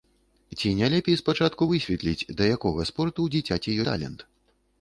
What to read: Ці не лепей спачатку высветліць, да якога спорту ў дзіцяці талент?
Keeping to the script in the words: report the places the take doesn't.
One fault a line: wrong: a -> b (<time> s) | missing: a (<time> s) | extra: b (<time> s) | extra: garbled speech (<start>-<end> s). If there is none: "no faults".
no faults